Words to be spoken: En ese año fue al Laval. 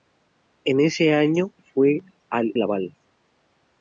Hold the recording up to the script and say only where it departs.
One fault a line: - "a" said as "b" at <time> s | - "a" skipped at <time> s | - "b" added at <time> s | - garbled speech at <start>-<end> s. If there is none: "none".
none